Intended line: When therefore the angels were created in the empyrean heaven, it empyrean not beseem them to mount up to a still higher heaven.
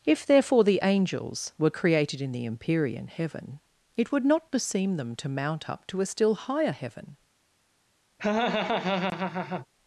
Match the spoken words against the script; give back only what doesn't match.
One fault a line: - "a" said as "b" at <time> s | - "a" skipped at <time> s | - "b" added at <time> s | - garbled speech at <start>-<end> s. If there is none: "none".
- "When" said as "If" at 0.1 s
- "empyrean" said as "would" at 4.1 s